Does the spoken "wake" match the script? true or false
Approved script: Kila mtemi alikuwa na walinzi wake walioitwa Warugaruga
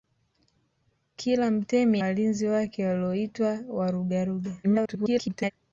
true